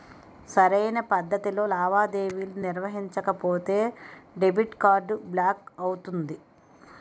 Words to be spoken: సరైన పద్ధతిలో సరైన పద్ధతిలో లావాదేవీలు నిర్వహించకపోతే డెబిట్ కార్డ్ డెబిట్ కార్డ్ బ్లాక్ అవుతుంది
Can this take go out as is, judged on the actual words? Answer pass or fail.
fail